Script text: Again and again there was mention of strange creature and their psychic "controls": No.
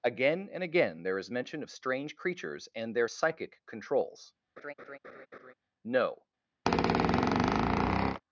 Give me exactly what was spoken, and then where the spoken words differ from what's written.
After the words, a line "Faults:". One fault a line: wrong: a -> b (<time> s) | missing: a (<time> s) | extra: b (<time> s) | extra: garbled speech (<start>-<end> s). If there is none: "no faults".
Again and again there is mention of strange creatures and their psychic "controls": No.
Faults:
wrong: was -> is (1.2 s)
wrong: creature -> creatures (2.2 s)